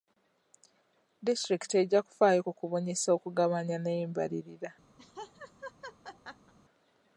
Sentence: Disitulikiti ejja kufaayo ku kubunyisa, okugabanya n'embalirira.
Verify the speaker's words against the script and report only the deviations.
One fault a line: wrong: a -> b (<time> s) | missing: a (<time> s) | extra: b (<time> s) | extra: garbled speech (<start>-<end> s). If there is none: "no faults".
no faults